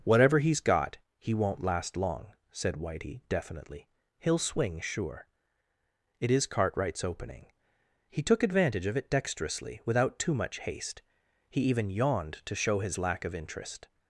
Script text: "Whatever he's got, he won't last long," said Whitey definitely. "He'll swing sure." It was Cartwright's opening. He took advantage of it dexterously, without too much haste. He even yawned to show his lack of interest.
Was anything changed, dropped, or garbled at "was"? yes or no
yes